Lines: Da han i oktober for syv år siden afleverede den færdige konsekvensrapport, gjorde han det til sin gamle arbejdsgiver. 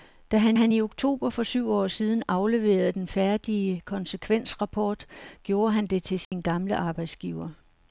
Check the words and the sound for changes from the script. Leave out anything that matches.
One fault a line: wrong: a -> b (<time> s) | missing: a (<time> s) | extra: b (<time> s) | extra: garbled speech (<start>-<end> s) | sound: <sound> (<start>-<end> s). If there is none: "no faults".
extra: han (0.5 s)
sound: dropout (6.2-6.3 s)